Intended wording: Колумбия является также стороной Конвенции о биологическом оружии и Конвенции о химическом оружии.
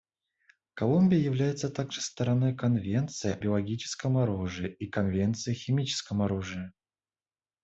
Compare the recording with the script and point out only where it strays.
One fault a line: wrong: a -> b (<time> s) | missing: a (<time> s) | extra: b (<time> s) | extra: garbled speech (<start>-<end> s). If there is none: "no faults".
missing: о (3.4 s)